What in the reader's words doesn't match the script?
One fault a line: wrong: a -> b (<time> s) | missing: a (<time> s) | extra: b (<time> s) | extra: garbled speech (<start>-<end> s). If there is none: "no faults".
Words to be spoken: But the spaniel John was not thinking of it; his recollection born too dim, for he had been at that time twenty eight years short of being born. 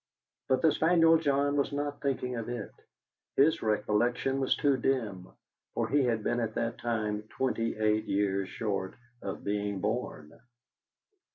wrong: born -> was (4.4 s)